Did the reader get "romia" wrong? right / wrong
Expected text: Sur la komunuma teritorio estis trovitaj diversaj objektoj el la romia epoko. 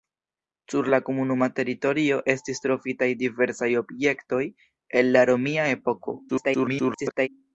right